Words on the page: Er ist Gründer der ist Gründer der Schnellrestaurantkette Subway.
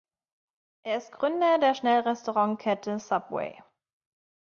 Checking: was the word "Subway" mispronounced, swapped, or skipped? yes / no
no